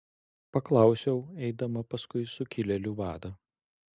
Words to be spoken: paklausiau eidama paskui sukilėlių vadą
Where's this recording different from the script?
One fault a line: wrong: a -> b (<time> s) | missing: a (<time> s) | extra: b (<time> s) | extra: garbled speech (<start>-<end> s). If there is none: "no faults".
no faults